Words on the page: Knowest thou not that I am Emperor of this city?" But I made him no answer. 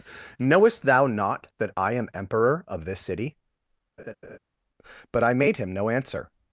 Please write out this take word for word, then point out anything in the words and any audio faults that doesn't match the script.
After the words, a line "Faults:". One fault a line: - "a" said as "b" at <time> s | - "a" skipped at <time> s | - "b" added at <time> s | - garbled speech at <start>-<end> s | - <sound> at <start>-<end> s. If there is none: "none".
Knowest thou not that I am Emperor of this city?" But I made him no answer.
Faults:
- laugh at 4.0-4.4 s